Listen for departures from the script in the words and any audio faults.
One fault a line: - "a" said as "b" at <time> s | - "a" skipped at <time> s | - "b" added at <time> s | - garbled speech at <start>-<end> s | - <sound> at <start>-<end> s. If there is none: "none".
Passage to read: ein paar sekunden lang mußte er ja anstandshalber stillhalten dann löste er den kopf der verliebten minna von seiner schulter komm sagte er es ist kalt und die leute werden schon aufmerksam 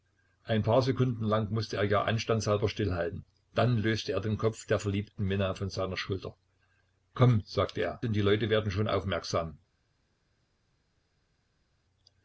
- "es ist kalt" skipped at 8.0 s